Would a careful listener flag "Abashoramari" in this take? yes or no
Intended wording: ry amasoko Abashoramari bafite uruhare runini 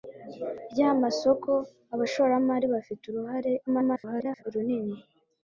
no